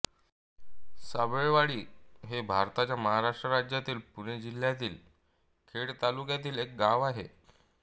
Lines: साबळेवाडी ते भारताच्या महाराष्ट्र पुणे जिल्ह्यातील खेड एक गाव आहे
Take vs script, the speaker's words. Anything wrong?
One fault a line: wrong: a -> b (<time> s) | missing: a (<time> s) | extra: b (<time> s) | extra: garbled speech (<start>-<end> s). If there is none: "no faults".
wrong: ते -> हे (2.2 s)
extra: राज्यातील (3.5 s)
extra: तालुक्यातील (6.0 s)